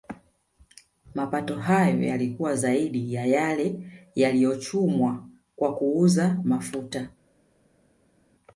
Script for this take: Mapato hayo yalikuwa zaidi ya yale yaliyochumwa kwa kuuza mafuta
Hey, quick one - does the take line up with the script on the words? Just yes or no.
yes